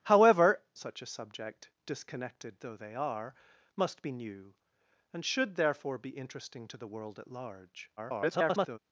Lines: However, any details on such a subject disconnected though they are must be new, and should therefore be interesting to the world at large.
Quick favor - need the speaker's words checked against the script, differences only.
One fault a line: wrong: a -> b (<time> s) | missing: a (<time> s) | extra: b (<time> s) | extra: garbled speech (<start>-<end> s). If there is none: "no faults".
missing: any details on (0.6 s)
extra: garbled speech (8.0-8.8 s)